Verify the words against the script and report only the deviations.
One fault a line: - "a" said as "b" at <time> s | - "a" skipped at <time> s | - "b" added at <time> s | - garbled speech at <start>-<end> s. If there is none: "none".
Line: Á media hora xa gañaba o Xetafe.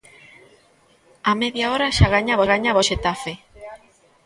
- "gañaba" added at 2.5 s